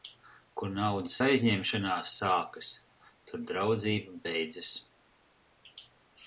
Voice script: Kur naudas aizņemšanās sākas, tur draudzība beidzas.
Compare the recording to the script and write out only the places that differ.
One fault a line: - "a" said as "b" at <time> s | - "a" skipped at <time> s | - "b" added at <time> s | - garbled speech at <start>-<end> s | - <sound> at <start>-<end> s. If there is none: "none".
none